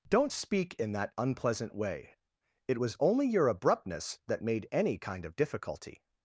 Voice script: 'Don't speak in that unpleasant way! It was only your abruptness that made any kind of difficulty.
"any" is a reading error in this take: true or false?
false